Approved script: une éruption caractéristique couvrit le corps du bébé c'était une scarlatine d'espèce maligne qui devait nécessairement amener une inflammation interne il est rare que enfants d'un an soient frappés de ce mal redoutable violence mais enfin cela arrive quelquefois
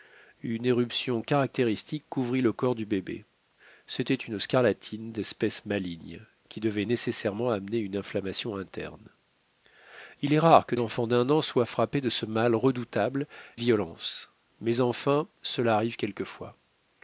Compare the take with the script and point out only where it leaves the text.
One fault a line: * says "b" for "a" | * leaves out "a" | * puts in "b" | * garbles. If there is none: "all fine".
all fine